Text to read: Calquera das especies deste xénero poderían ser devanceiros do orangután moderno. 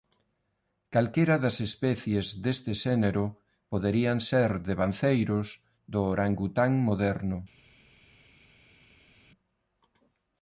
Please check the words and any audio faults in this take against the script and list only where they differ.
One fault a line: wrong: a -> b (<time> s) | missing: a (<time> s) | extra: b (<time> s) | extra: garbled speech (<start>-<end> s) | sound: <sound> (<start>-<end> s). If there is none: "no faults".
no faults